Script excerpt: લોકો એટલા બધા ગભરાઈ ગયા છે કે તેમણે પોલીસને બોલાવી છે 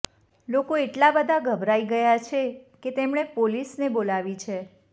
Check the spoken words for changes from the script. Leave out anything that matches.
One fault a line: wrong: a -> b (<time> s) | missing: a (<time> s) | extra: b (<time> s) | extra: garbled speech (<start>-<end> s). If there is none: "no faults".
no faults